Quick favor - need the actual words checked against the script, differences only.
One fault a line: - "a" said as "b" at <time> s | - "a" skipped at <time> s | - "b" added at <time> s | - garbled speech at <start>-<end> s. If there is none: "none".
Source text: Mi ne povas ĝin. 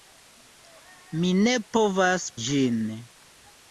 none